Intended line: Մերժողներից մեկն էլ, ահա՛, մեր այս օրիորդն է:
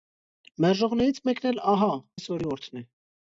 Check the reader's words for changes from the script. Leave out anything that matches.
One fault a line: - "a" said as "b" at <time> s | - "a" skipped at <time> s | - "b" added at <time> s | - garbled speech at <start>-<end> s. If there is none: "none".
- "մեր" skipped at 1.9 s